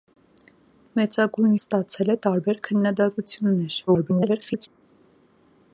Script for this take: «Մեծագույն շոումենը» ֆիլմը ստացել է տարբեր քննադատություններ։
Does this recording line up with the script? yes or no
no